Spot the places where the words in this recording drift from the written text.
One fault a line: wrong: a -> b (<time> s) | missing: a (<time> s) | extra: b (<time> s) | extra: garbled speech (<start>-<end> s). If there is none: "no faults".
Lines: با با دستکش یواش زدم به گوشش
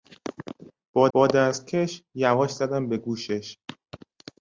no faults